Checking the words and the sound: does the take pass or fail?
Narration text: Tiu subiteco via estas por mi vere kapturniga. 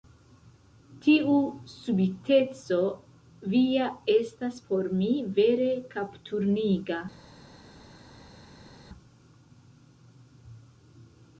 pass